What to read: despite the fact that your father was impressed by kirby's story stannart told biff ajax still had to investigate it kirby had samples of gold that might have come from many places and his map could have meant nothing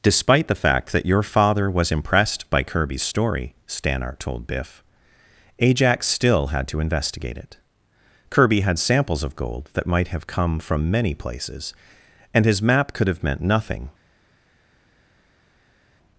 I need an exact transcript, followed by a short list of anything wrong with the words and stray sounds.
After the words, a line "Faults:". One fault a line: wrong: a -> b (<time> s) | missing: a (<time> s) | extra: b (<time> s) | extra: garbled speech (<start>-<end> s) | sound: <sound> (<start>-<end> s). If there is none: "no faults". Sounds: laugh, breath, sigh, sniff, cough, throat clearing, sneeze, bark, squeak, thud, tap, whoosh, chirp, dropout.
despite the fact that your father was impressed by kirby's story stannart told biff ajax still had to investigate it kirby had samples of gold that might have come from many places and his map could have meant nothing
Faults:
no faults